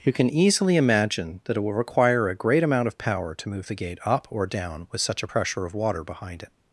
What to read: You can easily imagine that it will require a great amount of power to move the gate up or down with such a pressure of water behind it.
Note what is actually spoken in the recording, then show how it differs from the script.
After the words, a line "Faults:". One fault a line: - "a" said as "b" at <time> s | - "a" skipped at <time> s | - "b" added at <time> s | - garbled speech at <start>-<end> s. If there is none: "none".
You can easily imagine that it will require a great amount of power to move the gate up or down with such a pressure of water behind it.
Faults:
none